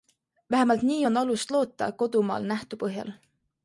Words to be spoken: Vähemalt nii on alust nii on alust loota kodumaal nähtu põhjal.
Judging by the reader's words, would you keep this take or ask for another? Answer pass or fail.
fail